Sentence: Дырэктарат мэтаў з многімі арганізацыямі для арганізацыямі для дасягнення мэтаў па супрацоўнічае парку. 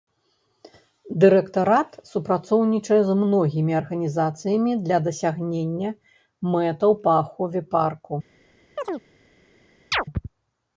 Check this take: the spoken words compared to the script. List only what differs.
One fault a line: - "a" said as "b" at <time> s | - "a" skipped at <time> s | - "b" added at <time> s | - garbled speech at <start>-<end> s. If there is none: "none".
- "мэтаў" said as "супрацоўнічае" at 2.1 s
- "арганізацыямі для" skipped at 5.0 s
- "супрацоўнічае" said as "ахове" at 7.3 s